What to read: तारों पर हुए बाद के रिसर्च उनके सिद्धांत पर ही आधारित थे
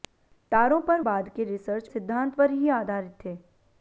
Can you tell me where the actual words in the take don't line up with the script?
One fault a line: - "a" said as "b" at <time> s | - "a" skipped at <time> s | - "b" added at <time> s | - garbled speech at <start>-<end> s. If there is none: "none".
- "हुए" skipped at 1.0 s
- "उनके" skipped at 1.9 s